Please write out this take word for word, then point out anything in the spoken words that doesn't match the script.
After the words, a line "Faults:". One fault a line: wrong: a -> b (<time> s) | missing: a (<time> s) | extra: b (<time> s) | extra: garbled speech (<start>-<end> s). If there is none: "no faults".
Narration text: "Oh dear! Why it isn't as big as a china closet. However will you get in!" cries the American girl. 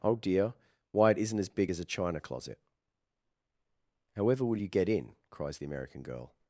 "Oh dear! Why it isn't as big as a china closet. However will you get in!" cries the American girl.
Faults:
no faults